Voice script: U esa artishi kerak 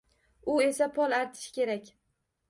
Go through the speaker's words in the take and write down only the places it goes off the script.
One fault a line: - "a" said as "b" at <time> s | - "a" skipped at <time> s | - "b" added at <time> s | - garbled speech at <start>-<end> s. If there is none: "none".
- "pol" added at 1.0 s